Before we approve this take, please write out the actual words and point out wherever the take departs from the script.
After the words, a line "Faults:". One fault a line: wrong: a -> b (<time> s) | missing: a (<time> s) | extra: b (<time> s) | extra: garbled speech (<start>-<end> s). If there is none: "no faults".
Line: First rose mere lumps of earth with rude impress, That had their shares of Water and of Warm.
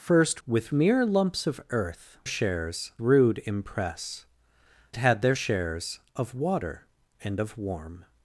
First with mere lumps of earth shares rude impress, Had their shares of Water and of Warm.
Faults:
wrong: rose -> with (0.5 s)
wrong: with -> shares (2.3 s)
missing: That (4.3 s)